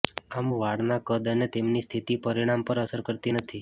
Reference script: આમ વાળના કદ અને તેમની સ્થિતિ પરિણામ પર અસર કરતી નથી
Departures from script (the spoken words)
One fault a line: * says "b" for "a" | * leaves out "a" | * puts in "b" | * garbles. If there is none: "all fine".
all fine